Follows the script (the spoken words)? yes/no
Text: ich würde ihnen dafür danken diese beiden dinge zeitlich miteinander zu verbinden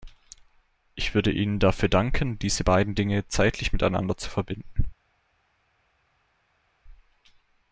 yes